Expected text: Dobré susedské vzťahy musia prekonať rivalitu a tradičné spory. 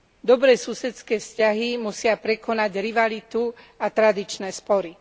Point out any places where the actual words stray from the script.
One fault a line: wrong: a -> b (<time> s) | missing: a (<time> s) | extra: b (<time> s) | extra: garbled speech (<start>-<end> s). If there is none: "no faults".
no faults